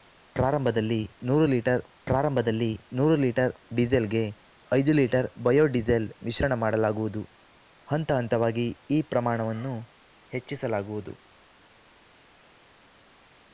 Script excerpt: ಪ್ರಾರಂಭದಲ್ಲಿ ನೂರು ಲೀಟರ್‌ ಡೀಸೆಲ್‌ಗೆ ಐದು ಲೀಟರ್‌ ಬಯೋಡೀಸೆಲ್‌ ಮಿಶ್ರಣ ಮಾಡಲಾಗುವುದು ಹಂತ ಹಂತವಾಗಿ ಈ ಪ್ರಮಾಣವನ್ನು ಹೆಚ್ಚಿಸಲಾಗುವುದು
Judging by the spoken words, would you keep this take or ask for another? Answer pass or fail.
fail